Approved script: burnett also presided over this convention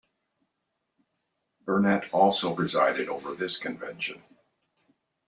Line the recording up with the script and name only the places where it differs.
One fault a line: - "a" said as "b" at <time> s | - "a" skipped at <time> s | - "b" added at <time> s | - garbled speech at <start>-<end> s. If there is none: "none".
none